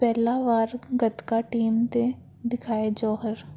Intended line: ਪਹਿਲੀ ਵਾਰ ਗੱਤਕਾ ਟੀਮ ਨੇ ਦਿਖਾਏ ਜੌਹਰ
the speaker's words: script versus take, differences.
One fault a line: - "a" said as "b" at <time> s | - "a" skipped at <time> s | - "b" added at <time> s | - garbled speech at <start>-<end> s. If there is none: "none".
none